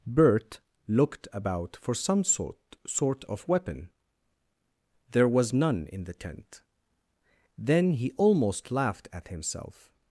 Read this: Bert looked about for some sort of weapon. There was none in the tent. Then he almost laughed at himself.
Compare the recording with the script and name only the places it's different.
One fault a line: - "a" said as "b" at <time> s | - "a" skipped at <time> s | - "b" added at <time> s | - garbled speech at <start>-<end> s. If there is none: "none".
- "sort" added at 2.9 s